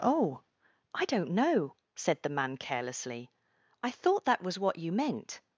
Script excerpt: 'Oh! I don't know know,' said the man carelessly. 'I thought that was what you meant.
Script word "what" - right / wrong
right